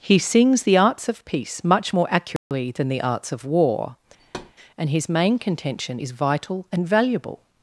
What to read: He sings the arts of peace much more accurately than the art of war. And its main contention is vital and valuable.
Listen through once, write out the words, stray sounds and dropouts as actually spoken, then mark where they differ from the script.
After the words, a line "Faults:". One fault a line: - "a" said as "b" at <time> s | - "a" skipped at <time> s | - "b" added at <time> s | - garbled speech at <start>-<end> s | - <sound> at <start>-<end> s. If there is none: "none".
He sings the arts of peace much more accurately than the arts of war. And his main contention is vital and valuable.
Faults:
- dropout at 2.4-2.5 s
- "art" said as "arts" at 3.0 s
- thud at 4.2-4.5 s
- "its" said as "his" at 4.9 s